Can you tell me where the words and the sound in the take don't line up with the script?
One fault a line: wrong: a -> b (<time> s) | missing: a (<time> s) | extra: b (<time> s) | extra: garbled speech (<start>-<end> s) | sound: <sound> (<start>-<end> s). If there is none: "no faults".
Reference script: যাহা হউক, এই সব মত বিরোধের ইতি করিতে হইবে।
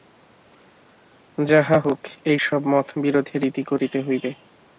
no faults